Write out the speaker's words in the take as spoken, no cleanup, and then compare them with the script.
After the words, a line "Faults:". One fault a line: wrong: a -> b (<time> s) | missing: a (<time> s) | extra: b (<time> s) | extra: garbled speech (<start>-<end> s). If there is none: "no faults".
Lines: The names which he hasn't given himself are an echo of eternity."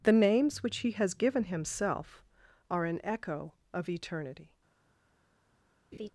The names which he has given himself are an echo of eternity."
Faults:
wrong: hasn't -> has (0.9 s)